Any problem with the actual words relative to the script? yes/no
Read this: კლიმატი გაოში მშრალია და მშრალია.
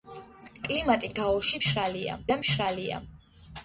no